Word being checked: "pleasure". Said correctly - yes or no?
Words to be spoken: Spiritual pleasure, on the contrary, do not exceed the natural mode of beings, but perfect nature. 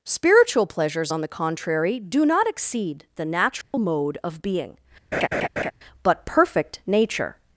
no